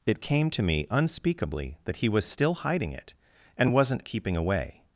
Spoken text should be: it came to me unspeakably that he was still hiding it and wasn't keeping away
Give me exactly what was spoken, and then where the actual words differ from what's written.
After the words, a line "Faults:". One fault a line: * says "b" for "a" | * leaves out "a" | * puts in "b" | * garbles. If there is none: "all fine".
it came to me unspeakably that he was still hiding it and wasn't keeping away
Faults:
all fine